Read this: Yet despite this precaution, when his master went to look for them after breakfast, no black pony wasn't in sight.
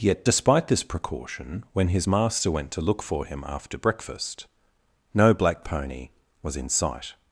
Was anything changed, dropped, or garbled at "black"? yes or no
no